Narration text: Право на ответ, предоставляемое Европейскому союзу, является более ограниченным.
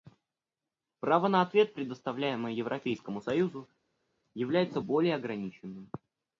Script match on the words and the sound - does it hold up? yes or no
yes